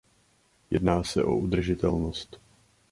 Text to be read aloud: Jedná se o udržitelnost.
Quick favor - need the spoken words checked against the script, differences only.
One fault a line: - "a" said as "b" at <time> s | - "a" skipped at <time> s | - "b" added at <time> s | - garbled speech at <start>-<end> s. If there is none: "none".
none